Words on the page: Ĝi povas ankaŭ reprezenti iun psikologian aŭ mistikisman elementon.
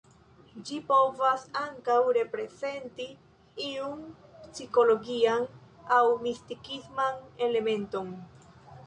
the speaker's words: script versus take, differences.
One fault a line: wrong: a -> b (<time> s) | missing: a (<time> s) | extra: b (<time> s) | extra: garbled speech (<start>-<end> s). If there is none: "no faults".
no faults